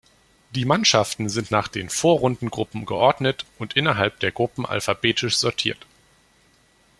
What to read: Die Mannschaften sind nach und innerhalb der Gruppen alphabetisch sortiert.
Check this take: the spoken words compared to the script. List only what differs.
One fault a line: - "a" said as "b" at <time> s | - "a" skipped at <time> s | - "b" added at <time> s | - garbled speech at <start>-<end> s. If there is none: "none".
- "den Vorrundengruppen geordnet" added at 1.7 s